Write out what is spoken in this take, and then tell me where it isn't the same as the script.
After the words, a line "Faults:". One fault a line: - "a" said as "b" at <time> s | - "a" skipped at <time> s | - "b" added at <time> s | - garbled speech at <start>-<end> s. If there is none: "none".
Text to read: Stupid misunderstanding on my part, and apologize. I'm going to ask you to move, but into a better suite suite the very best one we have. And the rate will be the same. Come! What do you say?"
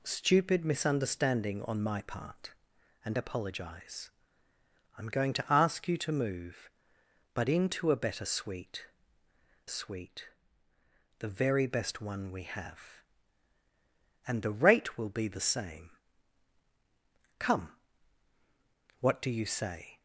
Stupid misunderstanding on my part, and apologize. I'm going to ask you to move, but into a better suite suite the very best one we have. And the rate will be the same. Come! What do you say?"
Faults:
none